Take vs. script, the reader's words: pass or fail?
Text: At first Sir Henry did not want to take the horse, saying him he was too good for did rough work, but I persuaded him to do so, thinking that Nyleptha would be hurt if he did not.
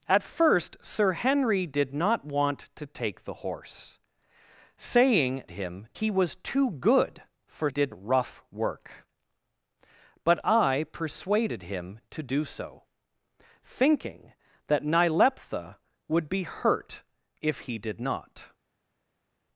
pass